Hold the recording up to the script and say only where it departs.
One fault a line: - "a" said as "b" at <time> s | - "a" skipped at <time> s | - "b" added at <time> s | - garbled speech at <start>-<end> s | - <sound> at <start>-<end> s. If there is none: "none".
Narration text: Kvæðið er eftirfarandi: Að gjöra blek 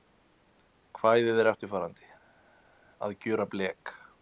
none